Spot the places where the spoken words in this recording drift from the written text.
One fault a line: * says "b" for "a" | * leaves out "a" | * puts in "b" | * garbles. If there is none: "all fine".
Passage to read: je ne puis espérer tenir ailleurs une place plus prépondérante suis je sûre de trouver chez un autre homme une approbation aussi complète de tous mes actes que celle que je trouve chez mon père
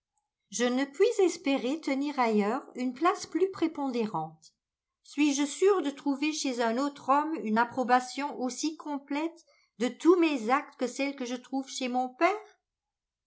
all fine